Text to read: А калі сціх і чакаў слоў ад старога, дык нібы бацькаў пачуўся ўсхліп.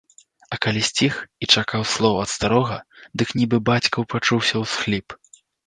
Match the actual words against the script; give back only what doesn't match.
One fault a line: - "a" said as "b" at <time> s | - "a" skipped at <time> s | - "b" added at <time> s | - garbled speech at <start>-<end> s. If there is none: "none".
none